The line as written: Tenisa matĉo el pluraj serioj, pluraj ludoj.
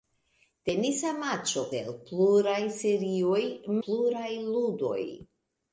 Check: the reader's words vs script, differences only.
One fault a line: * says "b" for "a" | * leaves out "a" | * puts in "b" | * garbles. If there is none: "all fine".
all fine